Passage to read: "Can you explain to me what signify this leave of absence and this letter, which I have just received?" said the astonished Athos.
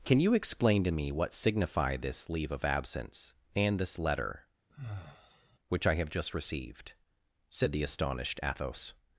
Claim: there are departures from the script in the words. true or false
false